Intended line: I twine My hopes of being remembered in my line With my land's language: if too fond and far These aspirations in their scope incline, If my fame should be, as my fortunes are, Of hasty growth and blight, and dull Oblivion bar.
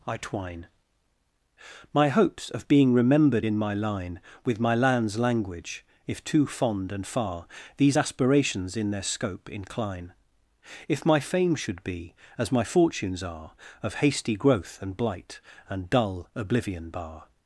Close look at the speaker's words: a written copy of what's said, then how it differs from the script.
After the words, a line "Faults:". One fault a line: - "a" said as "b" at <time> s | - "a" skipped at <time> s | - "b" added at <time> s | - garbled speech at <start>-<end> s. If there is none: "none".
I twine My hopes of being remembered in my line With my land's language: if too fond and far These aspirations in their scope incline, If my fame should be, as my fortunes are, Of hasty growth and blight, and dull Oblivion bar.
Faults:
none